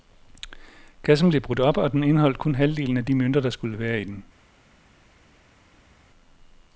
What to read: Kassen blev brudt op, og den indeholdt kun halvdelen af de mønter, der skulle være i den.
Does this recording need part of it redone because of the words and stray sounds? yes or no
no